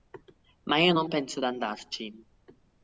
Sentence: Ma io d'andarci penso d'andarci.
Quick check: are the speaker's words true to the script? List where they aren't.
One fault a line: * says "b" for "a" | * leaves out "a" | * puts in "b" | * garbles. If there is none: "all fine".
* says "non" for "d'andarci"